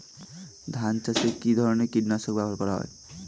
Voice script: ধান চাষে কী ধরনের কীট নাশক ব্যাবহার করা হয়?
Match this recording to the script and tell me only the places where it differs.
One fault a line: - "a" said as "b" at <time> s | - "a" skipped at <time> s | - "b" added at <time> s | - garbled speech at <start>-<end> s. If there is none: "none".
none